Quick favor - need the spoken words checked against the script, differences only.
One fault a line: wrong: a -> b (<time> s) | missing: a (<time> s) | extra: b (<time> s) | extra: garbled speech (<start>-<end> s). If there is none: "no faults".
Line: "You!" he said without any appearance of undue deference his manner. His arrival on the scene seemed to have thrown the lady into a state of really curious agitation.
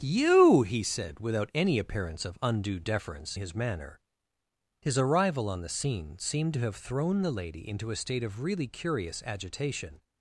no faults